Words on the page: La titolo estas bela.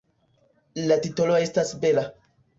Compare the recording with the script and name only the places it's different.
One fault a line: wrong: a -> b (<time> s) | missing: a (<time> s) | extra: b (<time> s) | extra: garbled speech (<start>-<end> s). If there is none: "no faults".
no faults